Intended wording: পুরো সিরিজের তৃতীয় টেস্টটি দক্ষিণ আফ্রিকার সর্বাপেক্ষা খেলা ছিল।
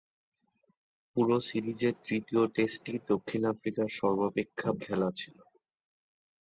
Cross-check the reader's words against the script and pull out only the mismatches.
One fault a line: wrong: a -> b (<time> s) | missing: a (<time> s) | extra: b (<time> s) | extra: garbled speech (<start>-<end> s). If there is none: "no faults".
no faults